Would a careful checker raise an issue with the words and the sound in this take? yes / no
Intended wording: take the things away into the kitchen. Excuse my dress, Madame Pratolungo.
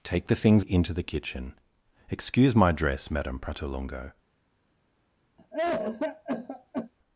yes